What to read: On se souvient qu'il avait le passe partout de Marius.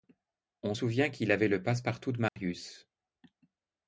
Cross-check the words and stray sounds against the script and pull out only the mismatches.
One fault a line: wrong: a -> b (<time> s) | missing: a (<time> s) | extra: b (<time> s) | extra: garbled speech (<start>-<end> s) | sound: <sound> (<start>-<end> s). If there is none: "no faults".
missing: se (0.7 s)
sound: dropout (2.3-2.4 s)